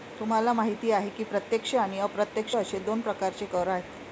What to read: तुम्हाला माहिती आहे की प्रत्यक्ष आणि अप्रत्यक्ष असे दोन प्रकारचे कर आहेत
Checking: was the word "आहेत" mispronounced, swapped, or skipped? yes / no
no